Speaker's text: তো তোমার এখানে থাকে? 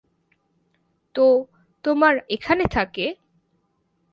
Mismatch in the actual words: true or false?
false